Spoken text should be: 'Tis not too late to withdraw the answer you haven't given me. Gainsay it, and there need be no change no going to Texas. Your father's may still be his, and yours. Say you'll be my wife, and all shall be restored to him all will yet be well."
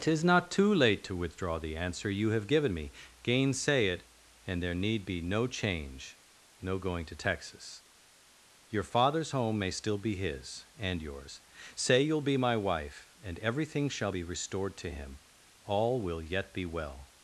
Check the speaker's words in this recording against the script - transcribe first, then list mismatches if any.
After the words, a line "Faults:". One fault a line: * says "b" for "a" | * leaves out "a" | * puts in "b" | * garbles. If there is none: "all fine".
'Tis not too late to withdraw the answer you have given me. Gainsay it, and there need be no change no going to Texas. Your father's home may still be his, and yours. Say you'll be my wife, and everything shall be restored to him all will yet be well."
Faults:
* says "have" for "haven't"
* puts in "home"
* says "everything" for "all"